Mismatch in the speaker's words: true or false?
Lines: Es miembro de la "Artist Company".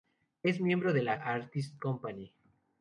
false